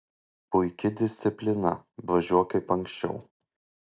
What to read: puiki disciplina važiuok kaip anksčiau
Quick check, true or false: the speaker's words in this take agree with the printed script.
true